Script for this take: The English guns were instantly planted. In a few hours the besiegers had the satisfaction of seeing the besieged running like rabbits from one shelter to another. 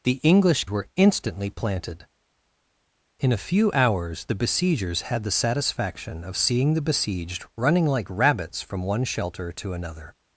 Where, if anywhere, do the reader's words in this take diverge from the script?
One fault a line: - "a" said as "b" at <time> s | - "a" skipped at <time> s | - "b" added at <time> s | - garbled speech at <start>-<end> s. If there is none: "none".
- "guns" skipped at 0.7 s